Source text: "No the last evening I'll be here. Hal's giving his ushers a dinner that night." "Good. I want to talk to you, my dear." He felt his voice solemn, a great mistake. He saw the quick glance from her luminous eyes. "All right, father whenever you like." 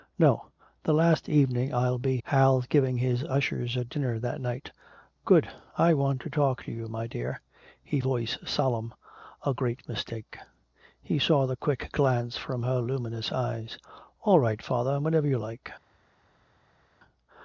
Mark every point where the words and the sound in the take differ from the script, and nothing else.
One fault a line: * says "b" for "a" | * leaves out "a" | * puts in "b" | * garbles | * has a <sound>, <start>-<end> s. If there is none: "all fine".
* leaves out "here"
* leaves out "felt his"